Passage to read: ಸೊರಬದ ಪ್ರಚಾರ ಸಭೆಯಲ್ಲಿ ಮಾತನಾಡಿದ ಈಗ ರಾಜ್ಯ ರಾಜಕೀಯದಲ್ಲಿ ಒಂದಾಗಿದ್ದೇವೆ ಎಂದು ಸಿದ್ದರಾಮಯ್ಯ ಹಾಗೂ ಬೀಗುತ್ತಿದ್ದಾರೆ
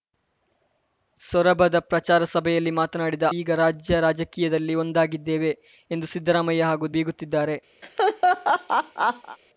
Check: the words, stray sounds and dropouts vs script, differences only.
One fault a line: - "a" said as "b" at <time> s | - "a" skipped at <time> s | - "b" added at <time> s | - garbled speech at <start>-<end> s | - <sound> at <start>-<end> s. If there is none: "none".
- laugh at 7.8-9.4 s